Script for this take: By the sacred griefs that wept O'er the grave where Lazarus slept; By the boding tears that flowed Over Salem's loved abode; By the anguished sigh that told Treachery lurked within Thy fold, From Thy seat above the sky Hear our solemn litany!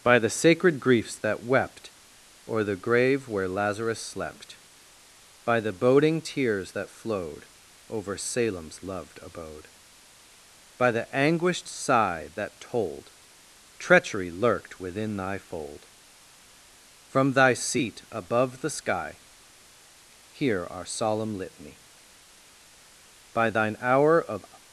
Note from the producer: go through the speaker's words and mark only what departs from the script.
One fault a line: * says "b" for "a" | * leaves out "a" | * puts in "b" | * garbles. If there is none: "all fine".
* puts in "By Thine hour of"